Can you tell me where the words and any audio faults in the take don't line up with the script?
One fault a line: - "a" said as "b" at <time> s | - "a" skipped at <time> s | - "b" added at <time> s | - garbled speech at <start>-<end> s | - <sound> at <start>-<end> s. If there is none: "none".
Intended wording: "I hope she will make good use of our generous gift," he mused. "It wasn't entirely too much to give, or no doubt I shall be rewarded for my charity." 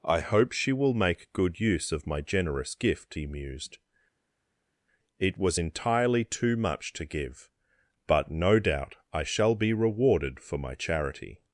- "our" said as "my" at 2.1 s
- "wasn't" said as "was" at 5.4 s
- "or" said as "but" at 8.1 s